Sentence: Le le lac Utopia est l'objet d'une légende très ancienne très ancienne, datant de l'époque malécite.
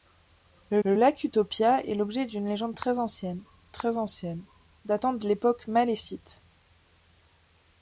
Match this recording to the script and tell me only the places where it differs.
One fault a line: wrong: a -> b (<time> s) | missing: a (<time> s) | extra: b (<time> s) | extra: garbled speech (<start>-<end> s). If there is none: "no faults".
no faults